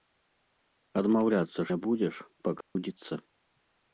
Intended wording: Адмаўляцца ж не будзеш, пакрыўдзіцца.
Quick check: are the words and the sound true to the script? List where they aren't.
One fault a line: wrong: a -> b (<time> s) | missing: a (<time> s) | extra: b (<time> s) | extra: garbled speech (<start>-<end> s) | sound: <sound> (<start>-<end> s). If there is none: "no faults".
missing: ж (1.6 s)
sound: dropout (2.6-2.8 s)